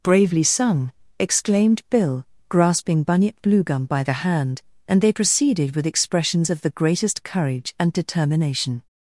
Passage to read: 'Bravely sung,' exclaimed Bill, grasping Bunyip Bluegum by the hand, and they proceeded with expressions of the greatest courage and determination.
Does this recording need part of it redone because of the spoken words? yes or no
no